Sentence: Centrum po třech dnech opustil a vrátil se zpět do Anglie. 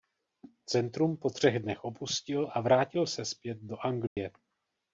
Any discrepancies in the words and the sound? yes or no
yes